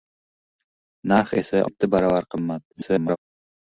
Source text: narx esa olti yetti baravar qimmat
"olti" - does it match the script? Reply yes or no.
no